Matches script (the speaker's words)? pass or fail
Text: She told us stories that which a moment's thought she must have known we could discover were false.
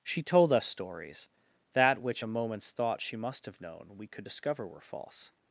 pass